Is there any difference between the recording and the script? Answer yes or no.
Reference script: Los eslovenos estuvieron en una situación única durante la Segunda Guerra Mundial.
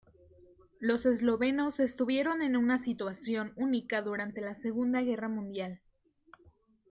no